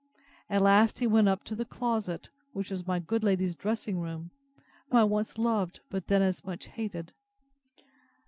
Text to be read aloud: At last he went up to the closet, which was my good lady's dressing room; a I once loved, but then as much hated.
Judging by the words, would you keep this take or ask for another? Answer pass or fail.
pass